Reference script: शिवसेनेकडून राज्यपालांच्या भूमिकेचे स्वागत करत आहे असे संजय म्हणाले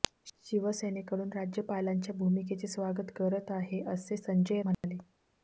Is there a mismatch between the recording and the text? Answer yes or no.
no